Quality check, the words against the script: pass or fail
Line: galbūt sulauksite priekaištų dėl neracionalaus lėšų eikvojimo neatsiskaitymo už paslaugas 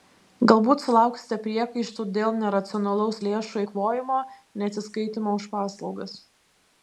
pass